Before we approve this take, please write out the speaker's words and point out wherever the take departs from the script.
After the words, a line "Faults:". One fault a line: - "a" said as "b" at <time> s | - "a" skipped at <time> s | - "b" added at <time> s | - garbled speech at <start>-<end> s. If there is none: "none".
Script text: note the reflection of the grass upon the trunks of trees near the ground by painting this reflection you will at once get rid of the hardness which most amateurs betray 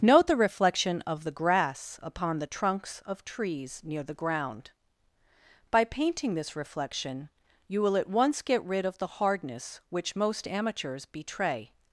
note the reflection of the grass upon the trunks of trees near the ground by painting this reflection you will at once get rid of the hardness which most amateurs betray
Faults:
none